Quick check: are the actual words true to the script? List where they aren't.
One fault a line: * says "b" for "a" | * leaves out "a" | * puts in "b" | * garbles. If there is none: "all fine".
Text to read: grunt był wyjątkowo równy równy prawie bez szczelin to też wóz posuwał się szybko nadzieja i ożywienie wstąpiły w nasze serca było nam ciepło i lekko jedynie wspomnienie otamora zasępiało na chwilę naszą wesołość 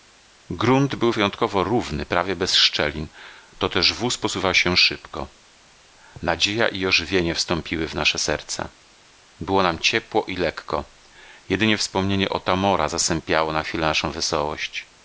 * leaves out "równy"